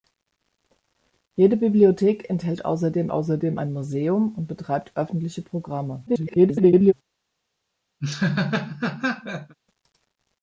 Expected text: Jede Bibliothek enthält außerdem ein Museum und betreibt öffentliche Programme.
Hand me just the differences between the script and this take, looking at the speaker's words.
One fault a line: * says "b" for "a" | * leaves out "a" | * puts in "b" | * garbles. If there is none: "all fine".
* puts in "außerdem"
* garbles